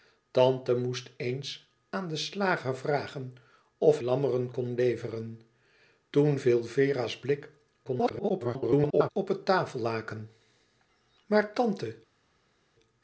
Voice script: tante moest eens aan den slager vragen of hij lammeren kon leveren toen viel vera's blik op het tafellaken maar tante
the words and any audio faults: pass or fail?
fail